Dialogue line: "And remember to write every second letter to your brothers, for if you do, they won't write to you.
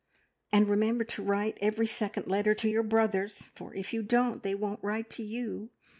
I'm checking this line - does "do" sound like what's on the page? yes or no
no